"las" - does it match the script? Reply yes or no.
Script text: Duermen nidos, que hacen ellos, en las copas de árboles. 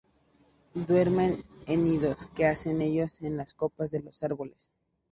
yes